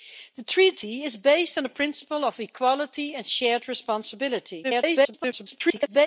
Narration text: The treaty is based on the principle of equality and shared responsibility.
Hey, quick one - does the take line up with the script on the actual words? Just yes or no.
no